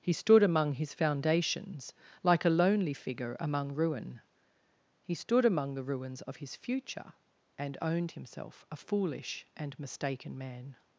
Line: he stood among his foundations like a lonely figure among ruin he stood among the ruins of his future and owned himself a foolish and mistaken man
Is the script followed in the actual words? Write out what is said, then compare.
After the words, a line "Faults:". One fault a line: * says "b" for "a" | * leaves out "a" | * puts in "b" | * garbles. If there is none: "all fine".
he stood among his foundations like a lonely figure among ruin he stood among the ruins of his future and owned himself a foolish and mistaken man
Faults:
all fine